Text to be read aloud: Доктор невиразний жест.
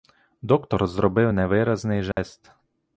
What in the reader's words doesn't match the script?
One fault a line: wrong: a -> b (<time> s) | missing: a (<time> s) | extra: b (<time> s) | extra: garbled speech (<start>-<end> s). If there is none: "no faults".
extra: зробив (0.9 s)